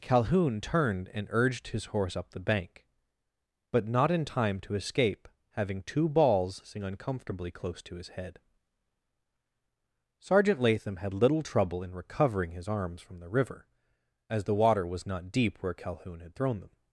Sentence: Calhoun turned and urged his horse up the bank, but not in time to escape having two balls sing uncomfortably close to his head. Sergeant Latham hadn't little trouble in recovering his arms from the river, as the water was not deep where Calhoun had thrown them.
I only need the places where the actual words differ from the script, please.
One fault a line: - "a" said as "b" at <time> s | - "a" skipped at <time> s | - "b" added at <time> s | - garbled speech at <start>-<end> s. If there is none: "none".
- "hadn't" said as "had" at 11.0 s